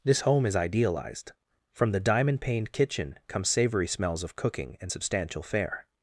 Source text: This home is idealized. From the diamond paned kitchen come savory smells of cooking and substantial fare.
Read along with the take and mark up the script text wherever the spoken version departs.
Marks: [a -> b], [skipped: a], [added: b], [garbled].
This home is idealized. From the diamond paned kitchen come savory smells of cooking and substantial fare.